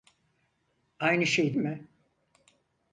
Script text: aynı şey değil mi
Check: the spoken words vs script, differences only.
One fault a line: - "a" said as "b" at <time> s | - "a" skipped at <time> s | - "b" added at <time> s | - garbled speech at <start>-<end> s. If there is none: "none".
- "değil" skipped at 1.6 s